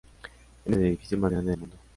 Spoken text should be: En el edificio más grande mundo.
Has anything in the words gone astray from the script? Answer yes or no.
no